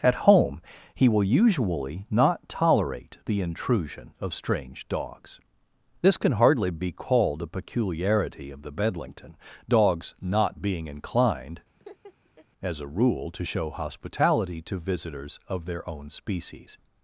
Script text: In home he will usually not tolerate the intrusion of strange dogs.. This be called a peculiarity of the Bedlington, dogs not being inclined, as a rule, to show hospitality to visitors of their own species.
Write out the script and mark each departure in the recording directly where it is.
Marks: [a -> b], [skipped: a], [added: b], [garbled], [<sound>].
[In -> At] home he will usually not tolerate the intrusion of strange dogs.. This [added: can hardly] be called a peculiarity of the Bedlington, dogs not being inclined, [laugh] as a rule, to show hospitality to visitors of their own species.